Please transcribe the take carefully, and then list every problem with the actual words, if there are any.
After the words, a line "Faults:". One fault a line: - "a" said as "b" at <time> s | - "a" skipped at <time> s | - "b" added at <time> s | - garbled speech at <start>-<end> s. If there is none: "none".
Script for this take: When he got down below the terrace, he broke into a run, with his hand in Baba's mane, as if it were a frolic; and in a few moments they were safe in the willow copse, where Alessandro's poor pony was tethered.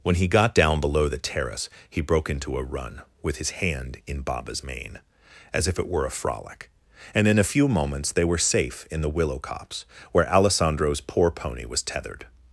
When he got down below the terrace, he broke into a run, with his hand in Baba's mane, as if it were a frolic; and in a few moments they were safe in the willow copse, where Alessandro's poor pony was tethered.
Faults:
none